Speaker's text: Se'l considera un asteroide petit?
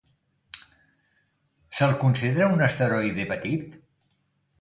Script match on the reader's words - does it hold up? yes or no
yes